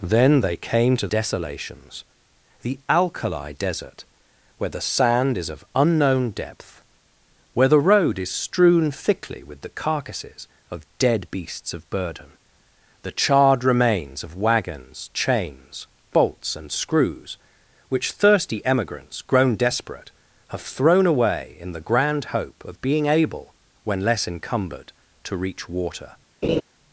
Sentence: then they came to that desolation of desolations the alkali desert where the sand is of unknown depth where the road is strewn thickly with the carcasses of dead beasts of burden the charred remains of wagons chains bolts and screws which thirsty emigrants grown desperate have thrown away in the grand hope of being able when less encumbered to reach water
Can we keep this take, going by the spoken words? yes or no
no